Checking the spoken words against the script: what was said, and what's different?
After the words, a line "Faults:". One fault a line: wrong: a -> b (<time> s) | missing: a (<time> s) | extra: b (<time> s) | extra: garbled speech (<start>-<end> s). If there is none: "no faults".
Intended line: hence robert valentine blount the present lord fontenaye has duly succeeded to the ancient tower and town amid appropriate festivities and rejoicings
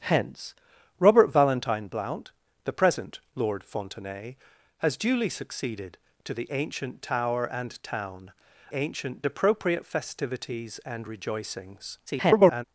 hence robert valentine blount the present lord fontenaye has duly succeeded to the ancient tower and town ancient appropriate festivities and rejoicings [garbled]
Faults:
wrong: amid -> ancient (8.7 s)
extra: garbled speech (12.1-12.6 s)